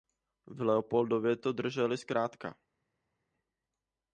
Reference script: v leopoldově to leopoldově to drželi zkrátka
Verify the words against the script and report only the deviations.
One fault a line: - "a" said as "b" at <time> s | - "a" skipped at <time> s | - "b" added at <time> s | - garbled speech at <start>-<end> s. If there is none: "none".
- "leopoldově to" skipped at 1.5 s